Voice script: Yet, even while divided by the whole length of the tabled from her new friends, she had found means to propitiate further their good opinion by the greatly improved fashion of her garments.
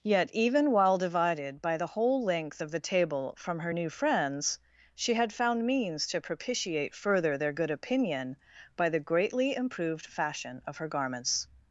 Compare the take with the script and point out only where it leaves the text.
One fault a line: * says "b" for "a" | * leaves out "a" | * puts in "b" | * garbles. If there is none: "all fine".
* says "table" for "tabled"